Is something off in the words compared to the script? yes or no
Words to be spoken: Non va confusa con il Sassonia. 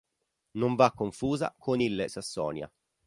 no